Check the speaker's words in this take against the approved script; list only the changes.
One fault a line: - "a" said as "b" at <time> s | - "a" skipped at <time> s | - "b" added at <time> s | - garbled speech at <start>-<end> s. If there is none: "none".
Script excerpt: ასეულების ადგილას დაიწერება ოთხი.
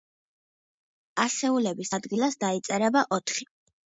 none